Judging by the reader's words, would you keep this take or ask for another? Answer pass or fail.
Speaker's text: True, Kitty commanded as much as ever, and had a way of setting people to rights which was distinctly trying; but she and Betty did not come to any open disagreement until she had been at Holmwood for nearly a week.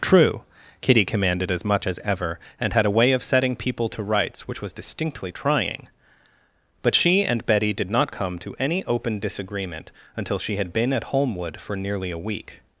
pass